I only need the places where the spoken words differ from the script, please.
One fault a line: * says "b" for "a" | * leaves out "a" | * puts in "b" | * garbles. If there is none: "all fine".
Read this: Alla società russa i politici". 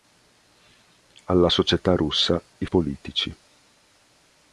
all fine